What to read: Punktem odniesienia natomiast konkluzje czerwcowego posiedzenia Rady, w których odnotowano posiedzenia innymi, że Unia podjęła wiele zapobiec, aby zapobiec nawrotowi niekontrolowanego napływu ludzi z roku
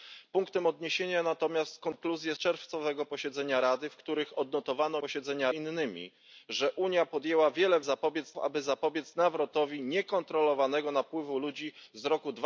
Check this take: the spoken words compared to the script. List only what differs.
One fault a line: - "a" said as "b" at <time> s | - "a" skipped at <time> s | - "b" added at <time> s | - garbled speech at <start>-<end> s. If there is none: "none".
none